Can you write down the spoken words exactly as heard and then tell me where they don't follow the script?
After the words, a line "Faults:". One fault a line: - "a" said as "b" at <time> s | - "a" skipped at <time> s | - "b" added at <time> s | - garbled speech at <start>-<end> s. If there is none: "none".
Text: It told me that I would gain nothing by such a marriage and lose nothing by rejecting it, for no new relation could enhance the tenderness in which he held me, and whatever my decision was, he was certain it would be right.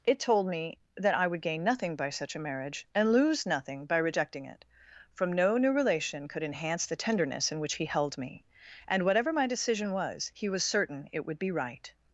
It told me that I would gain nothing by such a marriage and lose nothing by rejecting it, from no new relation could enhance the tenderness in which he held me, and whatever my decision was, he was certain it would be right.
Faults:
- "for" said as "from" at 5.1 s